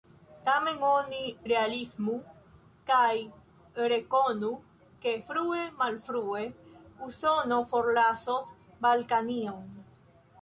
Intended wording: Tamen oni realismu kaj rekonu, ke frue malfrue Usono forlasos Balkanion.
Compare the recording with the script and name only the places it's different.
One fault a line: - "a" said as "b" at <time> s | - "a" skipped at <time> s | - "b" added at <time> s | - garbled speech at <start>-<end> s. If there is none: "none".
none